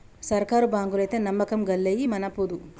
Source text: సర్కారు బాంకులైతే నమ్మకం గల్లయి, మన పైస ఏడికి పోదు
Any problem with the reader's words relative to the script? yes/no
yes